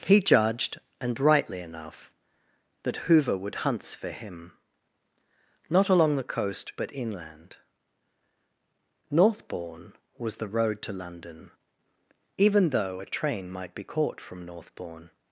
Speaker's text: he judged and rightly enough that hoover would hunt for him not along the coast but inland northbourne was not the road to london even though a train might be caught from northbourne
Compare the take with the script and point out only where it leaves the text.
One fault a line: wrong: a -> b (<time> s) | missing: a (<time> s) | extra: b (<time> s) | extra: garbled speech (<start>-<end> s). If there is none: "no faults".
wrong: hunt -> hunts (3.6 s)
missing: not (10.4 s)